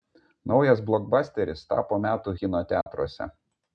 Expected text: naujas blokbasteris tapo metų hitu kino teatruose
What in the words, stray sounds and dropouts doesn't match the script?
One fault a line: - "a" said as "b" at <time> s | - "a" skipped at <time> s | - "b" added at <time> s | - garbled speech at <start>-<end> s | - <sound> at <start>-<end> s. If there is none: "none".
- "hitu" skipped at 2.3 s
- dropout at 2.8-2.9 s